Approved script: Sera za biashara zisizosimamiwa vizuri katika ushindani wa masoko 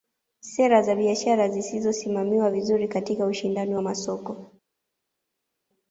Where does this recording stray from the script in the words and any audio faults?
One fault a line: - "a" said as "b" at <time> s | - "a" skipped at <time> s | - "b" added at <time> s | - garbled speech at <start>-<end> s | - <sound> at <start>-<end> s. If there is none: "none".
none